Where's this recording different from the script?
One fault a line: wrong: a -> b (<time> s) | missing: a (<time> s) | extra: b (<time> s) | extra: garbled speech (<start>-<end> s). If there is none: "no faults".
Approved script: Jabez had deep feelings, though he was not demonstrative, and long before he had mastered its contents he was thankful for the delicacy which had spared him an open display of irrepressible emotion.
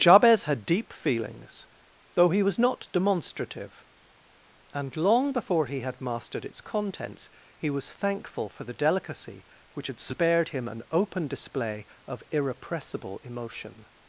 no faults